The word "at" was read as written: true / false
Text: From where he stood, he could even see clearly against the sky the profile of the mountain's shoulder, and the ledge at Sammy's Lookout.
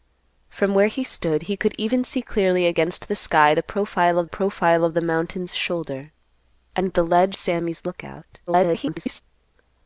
false